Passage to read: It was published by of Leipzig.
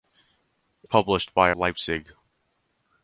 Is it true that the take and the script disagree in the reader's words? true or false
true